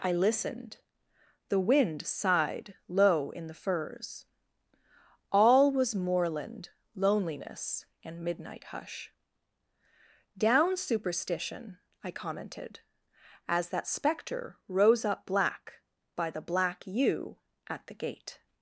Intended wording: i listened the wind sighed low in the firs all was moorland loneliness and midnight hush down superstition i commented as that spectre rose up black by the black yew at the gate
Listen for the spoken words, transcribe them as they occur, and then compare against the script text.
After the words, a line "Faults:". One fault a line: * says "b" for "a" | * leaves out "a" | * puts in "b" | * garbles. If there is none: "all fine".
i listened the wind sighed low in the firs all was moorland loneliness and midnight hush down superstition i commented as that spectre rose up black by the black yew at the gate
Faults:
all fine